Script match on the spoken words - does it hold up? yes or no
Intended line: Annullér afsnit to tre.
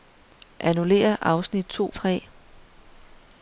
yes